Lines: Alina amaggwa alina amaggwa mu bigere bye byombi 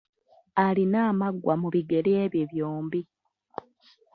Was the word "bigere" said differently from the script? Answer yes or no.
no